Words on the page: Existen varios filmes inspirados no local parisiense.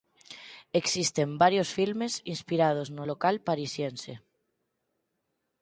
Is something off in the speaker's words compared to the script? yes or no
no